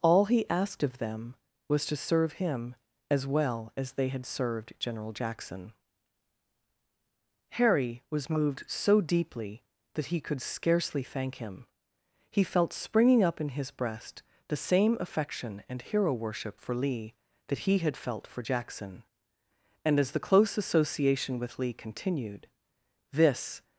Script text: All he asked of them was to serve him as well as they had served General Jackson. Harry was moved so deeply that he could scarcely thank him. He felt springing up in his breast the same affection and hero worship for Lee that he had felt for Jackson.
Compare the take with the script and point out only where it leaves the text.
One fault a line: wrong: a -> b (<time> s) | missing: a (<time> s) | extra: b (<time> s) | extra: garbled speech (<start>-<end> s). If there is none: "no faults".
extra: And as the close association with Lee continued this (19.8 s)